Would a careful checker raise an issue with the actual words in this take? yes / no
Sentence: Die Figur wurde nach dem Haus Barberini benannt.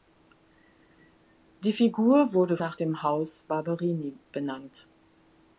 no